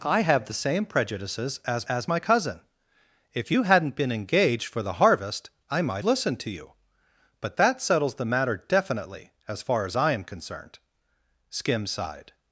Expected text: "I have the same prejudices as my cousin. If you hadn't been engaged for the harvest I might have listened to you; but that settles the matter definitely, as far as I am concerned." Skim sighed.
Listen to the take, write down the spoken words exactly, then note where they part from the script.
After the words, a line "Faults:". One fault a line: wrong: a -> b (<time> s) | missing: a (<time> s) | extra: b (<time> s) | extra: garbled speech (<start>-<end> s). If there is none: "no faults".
"I have the same prejudices as as my cousin. If you hadn't been engaged for the harvest I might listened to you; but that settles the matter definitely, as far as I am concerned." Skim sighed.
Faults:
extra: as (1.9 s)
missing: have (6.0 s)